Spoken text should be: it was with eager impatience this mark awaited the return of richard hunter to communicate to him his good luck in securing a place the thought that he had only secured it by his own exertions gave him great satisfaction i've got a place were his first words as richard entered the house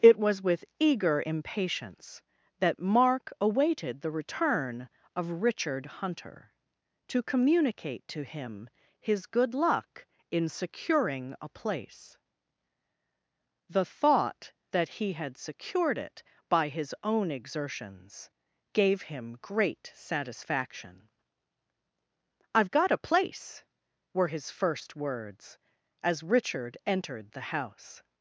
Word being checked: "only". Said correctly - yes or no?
no